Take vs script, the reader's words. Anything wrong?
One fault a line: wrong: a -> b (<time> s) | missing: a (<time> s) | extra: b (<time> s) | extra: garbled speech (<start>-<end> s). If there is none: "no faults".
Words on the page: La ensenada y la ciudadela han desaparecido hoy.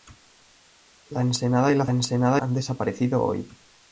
wrong: ciudadela -> ensenada (1.9 s)